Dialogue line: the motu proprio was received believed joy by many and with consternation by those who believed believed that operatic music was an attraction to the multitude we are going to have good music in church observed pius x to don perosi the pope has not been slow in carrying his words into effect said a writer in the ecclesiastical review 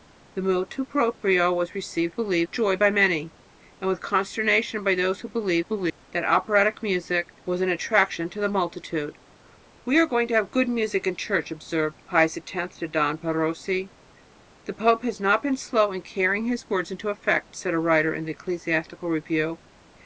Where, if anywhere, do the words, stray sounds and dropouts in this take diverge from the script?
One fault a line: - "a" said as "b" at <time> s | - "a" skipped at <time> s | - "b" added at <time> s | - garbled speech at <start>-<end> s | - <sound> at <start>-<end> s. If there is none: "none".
- dropout at 5.9-6.0 s